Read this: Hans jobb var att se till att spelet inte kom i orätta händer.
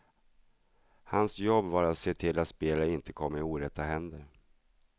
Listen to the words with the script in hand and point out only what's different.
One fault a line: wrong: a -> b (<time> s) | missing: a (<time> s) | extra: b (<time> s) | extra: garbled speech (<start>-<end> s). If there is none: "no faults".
no faults